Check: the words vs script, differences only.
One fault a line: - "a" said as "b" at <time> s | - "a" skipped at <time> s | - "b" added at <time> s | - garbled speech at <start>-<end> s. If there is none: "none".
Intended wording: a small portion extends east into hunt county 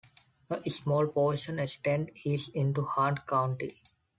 none